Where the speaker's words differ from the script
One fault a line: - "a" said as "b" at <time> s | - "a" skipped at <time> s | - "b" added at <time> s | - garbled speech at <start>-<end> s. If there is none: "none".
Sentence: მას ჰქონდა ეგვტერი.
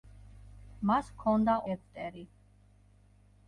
none